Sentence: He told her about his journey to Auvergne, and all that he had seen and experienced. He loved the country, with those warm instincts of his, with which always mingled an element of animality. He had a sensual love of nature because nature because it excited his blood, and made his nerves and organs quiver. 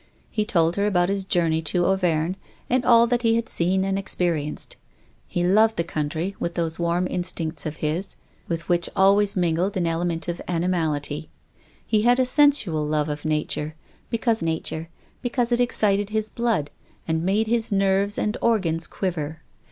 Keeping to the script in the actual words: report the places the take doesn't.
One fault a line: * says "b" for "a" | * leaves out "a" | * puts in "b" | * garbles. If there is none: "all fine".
all fine